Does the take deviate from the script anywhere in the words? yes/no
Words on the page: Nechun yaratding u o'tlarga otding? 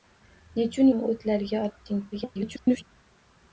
yes